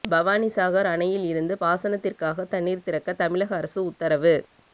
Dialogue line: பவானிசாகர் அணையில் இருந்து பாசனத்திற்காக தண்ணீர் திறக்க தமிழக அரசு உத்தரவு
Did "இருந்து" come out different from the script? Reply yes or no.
no